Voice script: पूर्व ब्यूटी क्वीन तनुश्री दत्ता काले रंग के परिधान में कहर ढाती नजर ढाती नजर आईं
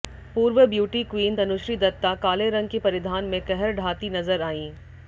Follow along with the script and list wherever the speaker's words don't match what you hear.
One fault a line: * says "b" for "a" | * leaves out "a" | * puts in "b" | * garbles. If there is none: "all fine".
* leaves out "ढाती नजर"